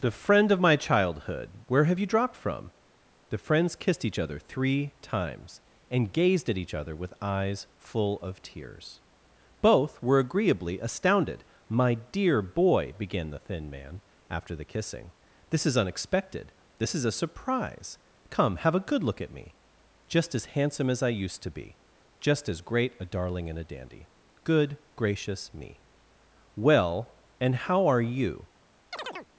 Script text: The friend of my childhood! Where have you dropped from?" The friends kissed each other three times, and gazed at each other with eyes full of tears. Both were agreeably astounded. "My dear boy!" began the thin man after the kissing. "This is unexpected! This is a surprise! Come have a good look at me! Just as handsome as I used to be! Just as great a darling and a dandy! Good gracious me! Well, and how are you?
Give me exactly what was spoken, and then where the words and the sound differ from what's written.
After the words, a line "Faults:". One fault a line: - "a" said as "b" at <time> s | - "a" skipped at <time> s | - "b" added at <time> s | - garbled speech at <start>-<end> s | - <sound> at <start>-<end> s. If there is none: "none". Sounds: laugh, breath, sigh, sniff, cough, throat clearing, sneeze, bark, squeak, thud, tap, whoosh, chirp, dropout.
The friend of my childhood! Where have you dropped from?" The friends kissed each other three times, and gazed at each other with eyes full of tears. Both were agreeably astounded. "My dear boy!" began the thin man after the kissing. "This is unexpected! This is a surprise! Come have a good look at me! Just as handsome as I used to be! Just as great a darling and a dandy! Good gracious me! Well, and how are you?
Faults:
- chirp at 28.9-29.3 s